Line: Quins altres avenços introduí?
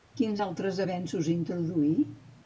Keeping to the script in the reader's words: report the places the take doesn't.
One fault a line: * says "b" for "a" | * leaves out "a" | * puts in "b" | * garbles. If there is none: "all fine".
all fine